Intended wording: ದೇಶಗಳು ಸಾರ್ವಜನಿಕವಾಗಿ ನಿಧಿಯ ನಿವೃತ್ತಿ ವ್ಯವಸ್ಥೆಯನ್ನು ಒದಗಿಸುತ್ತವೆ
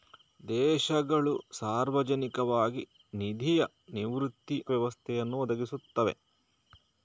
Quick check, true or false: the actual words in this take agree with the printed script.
true